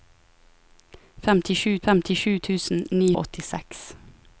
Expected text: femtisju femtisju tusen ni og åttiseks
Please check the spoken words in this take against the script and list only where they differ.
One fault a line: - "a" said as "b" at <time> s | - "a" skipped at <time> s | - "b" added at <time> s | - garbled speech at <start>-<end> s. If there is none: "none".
none